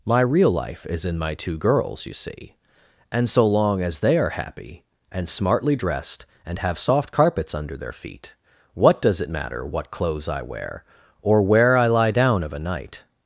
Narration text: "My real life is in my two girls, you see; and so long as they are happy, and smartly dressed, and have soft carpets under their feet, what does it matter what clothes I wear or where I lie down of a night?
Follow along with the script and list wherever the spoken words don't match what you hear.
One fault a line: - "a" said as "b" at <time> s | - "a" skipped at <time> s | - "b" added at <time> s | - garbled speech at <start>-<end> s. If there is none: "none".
none